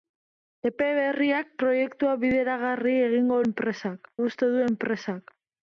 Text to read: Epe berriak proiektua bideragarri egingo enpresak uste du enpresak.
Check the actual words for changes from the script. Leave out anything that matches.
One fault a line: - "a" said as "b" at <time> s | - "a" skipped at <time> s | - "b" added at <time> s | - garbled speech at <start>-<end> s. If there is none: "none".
none